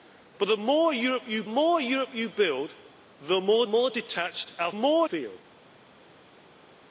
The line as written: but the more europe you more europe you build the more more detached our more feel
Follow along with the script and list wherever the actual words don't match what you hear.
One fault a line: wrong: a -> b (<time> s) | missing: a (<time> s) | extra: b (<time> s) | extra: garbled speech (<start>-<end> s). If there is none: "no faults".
no faults